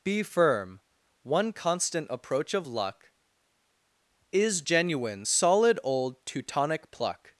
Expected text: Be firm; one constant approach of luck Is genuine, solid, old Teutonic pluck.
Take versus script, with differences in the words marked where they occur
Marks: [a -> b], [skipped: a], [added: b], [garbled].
Be firm; one constant approach of luck Is genuine, solid, old Teutonic pluck.